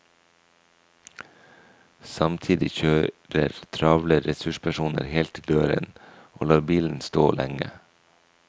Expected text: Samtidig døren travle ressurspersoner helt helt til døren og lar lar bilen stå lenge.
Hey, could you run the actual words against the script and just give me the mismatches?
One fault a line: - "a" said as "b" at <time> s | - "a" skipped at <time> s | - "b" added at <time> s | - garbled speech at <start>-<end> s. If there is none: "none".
- "døren" said as "kjører" at 2.8 s
- "helt" skipped at 5.3 s
- "lar" skipped at 6.7 s